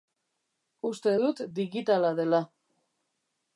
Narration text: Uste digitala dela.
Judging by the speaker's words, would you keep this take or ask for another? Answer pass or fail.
fail